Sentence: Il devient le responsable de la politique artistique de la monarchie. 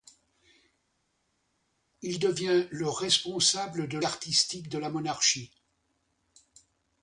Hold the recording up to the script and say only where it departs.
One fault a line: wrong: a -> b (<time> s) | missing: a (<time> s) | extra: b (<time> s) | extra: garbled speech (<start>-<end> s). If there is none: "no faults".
missing: la politique (4.0 s)